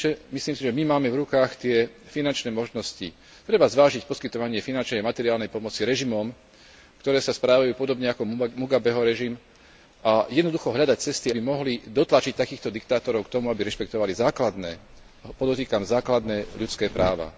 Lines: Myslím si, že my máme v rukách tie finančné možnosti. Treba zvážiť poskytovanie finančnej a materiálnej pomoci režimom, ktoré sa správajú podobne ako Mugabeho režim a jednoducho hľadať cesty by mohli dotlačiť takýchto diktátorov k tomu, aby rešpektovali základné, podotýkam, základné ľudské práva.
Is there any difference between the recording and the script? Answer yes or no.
no